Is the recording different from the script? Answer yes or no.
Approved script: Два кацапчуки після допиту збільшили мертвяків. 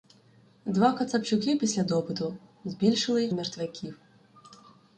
no